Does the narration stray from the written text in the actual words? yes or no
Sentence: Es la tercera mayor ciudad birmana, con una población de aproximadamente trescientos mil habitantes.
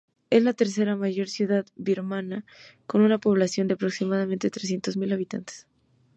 no